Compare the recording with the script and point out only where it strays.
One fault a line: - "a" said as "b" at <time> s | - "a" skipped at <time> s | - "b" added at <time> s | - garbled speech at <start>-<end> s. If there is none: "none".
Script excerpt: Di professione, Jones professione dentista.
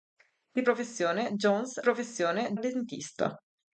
none